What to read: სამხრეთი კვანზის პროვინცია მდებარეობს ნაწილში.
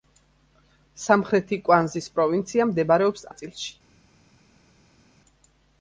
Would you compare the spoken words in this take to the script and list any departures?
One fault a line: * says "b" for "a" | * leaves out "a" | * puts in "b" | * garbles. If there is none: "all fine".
all fine